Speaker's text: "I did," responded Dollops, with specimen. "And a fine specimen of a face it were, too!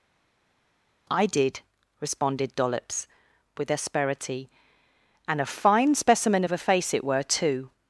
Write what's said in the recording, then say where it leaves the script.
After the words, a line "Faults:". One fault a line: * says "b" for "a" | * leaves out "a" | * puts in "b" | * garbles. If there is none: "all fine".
"I did," responded Dollops, with asperity. "And a fine specimen of a face it were, too!
Faults:
* says "asperity" for "specimen"